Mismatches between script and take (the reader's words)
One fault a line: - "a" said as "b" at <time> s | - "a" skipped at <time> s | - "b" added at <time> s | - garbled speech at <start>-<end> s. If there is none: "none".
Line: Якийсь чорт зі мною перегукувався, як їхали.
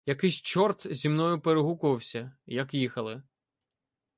none